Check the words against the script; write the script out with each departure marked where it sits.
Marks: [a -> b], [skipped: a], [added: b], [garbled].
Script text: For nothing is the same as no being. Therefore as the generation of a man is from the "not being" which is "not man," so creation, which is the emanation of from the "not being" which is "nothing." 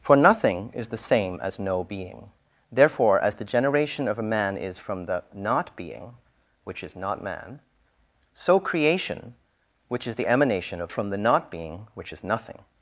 For nothing is the same as no being. Therefore as the generation of a man is from the "not being" which is "not man," so creation, which is the emanation of from the "not being" which is "nothing."